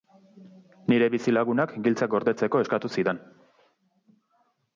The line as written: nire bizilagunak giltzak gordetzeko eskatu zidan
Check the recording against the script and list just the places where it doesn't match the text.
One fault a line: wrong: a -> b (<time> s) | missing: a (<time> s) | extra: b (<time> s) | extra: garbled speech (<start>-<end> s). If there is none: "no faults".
no faults